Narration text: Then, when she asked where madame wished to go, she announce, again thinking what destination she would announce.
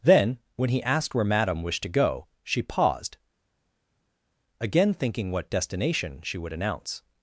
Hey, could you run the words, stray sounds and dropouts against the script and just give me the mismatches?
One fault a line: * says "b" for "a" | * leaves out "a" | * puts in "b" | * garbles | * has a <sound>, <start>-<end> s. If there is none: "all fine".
* says "he" for "she"
* says "paused" for "announce"